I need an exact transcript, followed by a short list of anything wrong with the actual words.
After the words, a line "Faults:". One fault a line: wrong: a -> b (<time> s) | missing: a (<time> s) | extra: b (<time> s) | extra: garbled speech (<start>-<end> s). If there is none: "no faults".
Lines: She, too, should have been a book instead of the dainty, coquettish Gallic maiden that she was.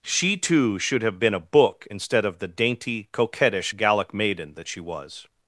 She, too, should have been a book instead of the dainty, coquettish Gallic maiden that she was.
Faults:
no faults